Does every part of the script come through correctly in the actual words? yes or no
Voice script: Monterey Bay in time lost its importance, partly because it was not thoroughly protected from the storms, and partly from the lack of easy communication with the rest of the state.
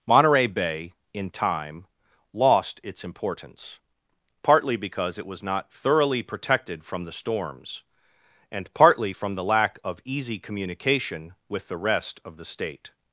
yes